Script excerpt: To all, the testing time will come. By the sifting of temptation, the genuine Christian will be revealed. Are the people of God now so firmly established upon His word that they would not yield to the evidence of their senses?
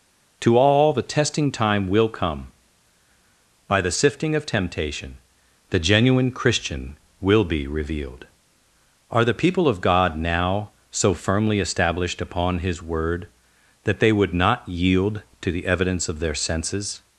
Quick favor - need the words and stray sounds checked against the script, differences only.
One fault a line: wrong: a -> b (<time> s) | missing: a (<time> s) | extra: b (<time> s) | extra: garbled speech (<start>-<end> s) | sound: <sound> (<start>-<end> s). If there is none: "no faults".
no faults